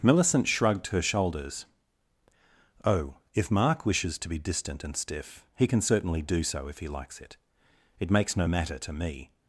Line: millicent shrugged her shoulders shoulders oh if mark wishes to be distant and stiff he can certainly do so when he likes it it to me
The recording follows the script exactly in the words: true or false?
false